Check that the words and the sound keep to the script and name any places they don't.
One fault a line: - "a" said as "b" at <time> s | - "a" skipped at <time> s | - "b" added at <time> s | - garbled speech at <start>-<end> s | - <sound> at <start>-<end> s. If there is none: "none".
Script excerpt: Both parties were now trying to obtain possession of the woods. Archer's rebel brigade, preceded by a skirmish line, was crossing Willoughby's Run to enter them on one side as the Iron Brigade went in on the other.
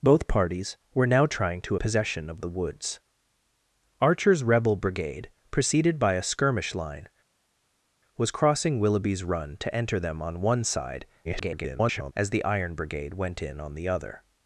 - "obtain" skipped at 1.8 s
- garbled speech at 11.2-12.1 s